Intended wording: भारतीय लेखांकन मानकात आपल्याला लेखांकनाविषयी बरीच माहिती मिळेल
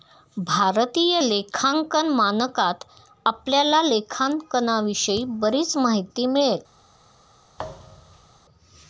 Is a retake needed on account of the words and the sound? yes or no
yes